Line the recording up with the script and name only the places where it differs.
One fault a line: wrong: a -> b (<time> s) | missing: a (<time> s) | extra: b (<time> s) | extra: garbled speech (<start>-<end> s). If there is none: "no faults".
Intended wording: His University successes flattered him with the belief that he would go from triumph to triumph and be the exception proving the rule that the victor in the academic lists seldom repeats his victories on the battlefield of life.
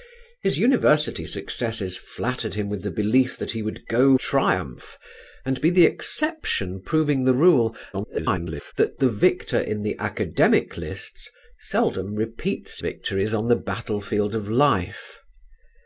missing: from (4.2 s)
missing: to triumph (5.0 s)
extra: garbled speech (7.9-8.7 s)
missing: his (12.8 s)